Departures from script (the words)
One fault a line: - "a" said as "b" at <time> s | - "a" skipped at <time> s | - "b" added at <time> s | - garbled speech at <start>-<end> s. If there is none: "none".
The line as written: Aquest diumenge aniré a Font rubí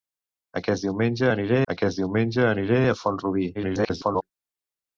- "aquest diumenge aniré" added at 1.7 s
- garbled speech at 3.5-4.2 s